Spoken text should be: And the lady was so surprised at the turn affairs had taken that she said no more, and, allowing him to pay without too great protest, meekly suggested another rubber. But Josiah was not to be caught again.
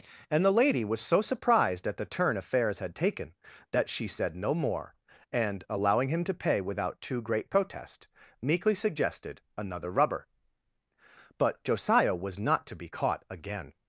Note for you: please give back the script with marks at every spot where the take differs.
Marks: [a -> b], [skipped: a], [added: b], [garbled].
And the lady was so surprised at the turn affairs had taken that she said no more, and, allowing him to pay without too great protest, meekly suggested another rubber. But Josiah was not to be caught again.